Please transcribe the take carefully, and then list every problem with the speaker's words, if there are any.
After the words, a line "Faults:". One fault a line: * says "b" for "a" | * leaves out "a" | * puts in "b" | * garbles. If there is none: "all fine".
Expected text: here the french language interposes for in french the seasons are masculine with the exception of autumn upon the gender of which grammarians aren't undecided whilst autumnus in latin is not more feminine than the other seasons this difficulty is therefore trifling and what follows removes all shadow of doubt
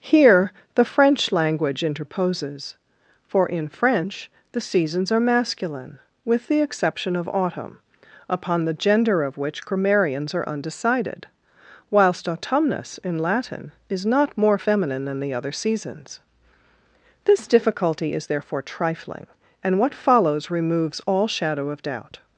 here the french language interposes for in french the seasons are masculine with the exception of autumn upon the gender of which grammarians are undecided whilst autumnus in latin is not more feminine than the other seasons this difficulty is therefore trifling and what follows removes all shadow of doubt
Faults:
* says "are" for "aren't"